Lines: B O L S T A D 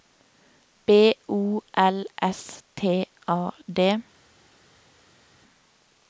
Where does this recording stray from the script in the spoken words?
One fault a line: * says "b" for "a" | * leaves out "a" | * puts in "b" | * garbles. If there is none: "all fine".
all fine